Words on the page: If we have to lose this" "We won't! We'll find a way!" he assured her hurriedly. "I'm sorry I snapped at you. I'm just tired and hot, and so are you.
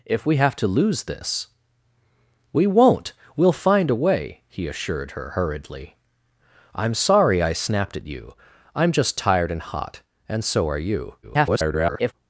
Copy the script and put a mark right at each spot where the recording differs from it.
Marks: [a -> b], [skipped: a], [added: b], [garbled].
If we have to lose this" "We won't! We'll find a way!" he assured her hurriedly. "I'm sorry I snapped at you. I'm just tired and hot, and so are you. [garbled]